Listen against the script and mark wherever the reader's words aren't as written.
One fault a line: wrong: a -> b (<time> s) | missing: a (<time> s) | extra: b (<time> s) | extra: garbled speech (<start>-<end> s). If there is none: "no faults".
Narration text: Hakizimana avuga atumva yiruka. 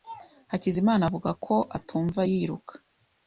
extra: ko (1.4 s)